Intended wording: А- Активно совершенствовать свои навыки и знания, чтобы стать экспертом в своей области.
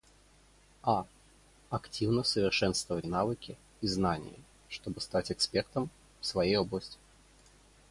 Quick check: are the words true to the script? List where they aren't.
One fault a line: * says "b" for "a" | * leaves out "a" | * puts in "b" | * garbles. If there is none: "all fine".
* leaves out "свои"